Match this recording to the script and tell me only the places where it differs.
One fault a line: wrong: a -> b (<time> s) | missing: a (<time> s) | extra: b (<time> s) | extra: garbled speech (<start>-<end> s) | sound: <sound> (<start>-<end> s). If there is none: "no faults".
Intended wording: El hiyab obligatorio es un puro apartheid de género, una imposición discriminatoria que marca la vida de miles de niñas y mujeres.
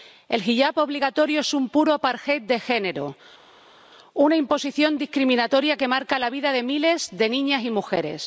no faults